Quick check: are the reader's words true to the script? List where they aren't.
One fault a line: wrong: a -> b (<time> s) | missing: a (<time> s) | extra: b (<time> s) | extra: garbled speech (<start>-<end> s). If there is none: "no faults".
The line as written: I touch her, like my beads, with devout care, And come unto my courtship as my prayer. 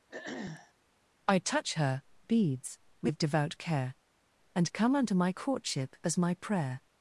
missing: like my (2.0 s)